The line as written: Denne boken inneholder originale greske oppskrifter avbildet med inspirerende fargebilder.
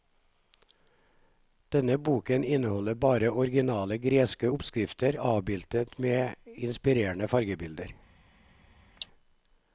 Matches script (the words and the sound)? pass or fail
fail